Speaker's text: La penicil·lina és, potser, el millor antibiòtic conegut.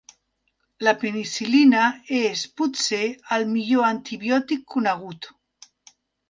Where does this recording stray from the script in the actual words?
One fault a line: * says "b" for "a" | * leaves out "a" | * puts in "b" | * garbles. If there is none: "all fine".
all fine